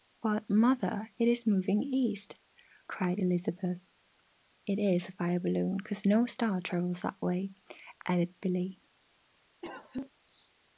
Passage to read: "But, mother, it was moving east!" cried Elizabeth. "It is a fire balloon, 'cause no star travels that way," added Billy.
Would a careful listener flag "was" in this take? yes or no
yes